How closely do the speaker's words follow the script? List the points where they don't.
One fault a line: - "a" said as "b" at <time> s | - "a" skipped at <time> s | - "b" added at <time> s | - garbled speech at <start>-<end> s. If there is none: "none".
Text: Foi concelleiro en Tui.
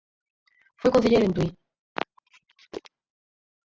none